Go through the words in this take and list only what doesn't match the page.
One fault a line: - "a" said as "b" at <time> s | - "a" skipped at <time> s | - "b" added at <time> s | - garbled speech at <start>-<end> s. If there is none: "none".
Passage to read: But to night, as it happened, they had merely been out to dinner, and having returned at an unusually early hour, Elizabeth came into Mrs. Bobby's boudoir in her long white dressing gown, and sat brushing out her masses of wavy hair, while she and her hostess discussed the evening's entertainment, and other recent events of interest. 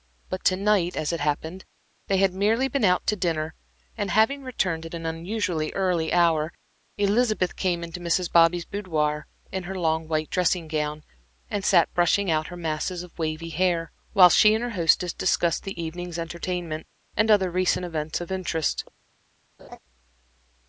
none